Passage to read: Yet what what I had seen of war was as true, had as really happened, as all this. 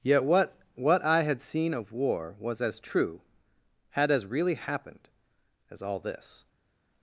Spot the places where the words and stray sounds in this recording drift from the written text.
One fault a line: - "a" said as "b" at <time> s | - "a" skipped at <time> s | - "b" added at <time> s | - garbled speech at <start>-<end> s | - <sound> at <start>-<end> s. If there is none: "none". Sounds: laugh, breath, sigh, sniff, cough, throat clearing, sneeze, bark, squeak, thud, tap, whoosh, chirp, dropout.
none